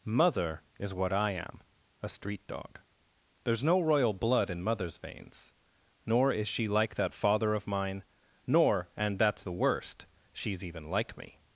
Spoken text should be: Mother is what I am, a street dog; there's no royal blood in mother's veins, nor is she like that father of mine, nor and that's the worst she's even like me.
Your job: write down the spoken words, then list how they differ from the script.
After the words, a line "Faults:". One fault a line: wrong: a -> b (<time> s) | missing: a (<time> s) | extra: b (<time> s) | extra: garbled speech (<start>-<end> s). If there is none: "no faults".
Mother is what I am, a street dog; there's no royal blood in mother's veins, nor is she like that father of mine, nor and that's the worst she's even like me.
Faults:
no faults